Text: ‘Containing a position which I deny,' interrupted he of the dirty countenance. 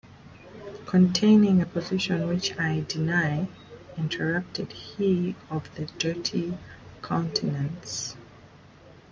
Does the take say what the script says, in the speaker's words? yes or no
yes